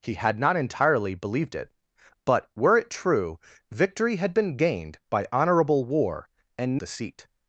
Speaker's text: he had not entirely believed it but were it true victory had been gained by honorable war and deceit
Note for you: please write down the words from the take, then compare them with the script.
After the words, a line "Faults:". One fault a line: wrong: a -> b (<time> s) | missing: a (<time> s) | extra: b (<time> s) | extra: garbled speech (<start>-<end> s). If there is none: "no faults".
he had not entirely believed it but were it true victory had been gained by honorable war and deceit
Faults:
no faults